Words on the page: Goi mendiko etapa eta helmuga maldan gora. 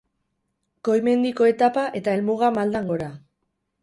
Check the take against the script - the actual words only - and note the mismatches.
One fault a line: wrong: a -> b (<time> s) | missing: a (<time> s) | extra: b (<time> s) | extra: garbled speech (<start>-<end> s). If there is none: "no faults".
no faults